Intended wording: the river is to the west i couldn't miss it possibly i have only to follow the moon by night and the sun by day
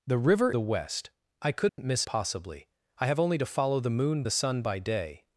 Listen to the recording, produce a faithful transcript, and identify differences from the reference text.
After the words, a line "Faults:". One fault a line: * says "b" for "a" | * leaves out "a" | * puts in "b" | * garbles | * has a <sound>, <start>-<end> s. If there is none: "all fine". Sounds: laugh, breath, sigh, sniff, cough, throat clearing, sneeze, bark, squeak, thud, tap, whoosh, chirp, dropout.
the river the west i couldn't miss possibly i have only to follow the moon the sun by day
Faults:
* leaves out "is to"
* has a dropout, 1.7-1.8 s
* leaves out "it"
* leaves out "by night and"